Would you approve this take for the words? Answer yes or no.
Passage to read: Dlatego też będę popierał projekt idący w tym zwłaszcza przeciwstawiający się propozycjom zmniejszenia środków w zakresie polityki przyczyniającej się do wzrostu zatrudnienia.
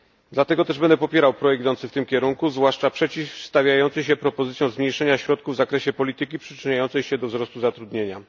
no